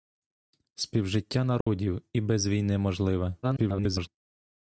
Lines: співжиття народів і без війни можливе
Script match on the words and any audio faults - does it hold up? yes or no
no